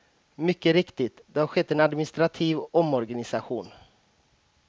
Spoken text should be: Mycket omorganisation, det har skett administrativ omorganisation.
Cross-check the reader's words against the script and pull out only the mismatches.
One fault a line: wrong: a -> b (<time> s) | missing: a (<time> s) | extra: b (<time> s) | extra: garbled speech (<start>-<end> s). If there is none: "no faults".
wrong: omorganisation -> riktigt (0.7 s)
extra: en (1.7 s)